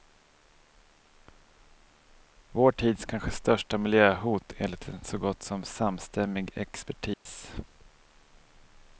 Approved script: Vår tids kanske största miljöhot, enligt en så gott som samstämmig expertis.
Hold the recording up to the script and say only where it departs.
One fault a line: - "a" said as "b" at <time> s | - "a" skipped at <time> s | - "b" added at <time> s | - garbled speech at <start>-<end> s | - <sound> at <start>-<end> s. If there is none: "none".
- dropout at 7.1-7.3 s